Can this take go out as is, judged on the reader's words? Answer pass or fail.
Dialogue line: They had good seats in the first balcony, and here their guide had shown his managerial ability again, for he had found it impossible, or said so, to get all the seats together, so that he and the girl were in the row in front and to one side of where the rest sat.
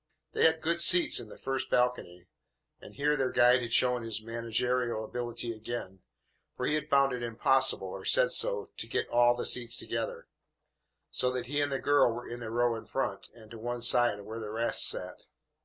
pass